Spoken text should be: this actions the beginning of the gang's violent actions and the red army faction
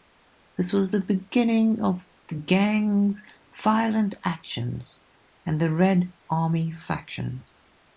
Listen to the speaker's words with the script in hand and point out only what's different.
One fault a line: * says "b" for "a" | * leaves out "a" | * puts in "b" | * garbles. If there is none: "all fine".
* says "was" for "actions"